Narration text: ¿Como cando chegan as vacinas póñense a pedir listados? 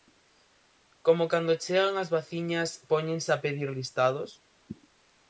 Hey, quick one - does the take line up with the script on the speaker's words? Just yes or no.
yes